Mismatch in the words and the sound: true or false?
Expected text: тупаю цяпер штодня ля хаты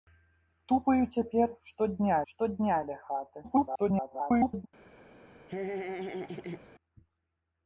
true